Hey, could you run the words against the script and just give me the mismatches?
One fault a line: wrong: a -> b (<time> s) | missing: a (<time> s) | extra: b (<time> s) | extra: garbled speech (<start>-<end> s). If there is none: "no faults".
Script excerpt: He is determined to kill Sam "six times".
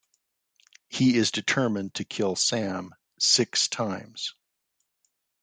no faults